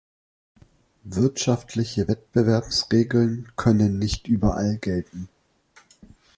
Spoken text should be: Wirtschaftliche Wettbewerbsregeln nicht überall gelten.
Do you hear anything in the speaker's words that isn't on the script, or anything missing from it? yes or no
yes